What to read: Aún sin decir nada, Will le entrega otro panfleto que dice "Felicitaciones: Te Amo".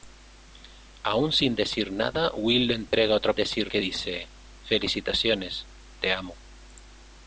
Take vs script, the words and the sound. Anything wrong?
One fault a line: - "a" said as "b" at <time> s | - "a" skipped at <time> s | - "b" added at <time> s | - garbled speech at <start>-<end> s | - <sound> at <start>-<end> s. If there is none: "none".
- dropout at 2.9-2.9 s
- "panfleto" said as "decir" at 3.3 s